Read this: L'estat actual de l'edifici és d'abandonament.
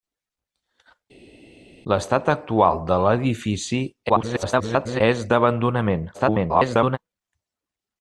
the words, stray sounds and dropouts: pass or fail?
fail